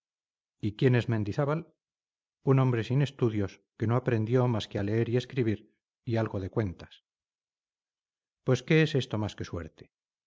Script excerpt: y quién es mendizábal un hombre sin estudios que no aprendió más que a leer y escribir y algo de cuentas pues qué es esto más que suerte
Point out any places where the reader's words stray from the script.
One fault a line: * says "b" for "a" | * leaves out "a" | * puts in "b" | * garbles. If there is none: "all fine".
all fine